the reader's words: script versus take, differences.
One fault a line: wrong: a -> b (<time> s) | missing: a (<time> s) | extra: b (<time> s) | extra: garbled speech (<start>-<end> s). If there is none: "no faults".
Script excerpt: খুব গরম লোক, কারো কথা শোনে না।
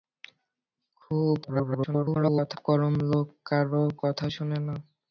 extra: garbled speech (1.4-2.6 s)